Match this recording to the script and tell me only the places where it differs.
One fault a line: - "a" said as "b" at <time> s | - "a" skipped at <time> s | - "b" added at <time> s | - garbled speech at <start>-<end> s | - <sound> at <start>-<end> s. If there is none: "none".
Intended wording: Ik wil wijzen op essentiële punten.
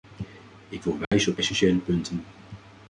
- dropout at 1.0-1.1 s